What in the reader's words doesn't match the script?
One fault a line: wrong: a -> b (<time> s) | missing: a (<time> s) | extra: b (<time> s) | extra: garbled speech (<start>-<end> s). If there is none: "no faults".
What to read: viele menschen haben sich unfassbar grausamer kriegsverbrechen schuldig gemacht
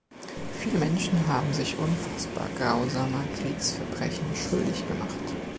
no faults